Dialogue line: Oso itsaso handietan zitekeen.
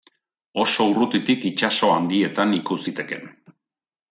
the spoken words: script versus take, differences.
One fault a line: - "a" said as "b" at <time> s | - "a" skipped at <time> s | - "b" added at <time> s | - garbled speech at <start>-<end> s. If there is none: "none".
- "urrutitik" added at 0.9 s
- "ikus" added at 2.6 s